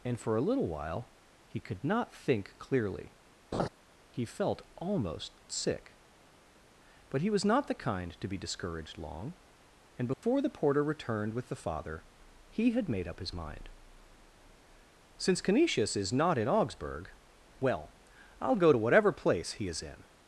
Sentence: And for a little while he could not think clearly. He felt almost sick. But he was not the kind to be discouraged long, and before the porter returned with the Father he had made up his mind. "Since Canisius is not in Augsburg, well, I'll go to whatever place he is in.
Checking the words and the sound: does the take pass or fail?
fail